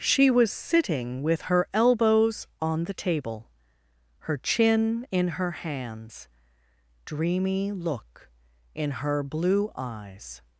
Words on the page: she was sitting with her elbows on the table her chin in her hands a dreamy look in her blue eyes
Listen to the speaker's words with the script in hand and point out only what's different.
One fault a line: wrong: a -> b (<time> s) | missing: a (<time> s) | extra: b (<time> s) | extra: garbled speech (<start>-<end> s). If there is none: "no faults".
missing: a (6.3 s)